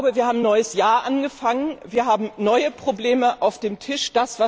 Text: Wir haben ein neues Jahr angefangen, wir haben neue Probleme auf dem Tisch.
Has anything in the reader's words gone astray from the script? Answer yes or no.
no